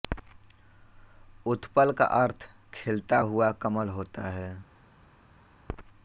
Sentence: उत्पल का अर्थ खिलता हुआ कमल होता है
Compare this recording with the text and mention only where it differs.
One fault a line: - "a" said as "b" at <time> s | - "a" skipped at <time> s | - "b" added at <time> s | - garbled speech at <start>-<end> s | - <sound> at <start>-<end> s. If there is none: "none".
none